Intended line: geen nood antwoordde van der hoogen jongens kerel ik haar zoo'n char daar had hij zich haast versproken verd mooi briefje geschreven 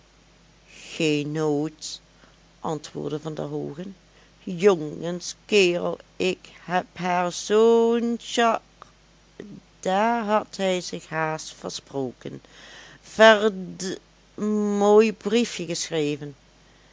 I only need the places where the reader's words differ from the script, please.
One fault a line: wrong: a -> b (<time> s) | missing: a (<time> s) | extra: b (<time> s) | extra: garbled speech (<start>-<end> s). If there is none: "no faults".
extra: heb (6.6 s)